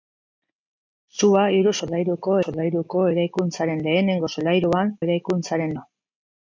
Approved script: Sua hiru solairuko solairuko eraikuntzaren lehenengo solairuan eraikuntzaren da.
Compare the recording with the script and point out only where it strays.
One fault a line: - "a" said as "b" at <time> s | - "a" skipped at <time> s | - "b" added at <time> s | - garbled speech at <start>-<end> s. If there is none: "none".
none